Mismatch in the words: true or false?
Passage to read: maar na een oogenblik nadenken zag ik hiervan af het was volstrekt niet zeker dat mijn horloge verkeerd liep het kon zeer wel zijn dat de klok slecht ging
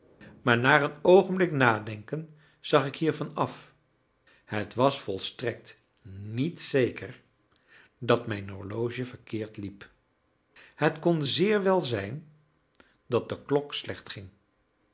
false